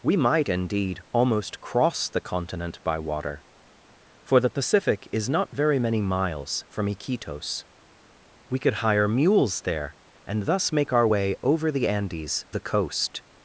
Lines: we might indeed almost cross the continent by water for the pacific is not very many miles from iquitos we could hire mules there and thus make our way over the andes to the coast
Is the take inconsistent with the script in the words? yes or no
yes